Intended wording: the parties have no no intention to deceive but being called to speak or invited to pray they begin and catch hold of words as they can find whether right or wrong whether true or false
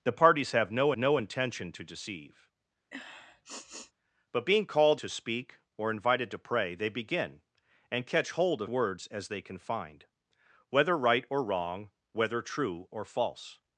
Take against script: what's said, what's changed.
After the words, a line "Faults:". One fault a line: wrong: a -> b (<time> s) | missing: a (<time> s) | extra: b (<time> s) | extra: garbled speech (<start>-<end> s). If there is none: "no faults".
the parties have no no intention to deceive but being called to speak or invited to pray they begin and catch hold of words as they can find whether right or wrong whether true or false
Faults:
no faults